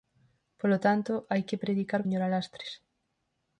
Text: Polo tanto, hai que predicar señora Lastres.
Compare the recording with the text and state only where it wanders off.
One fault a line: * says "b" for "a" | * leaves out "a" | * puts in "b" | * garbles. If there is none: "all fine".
all fine